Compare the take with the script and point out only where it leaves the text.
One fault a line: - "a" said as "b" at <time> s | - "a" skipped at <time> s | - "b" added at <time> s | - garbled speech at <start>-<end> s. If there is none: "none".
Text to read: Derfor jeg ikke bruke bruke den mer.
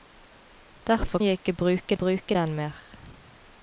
none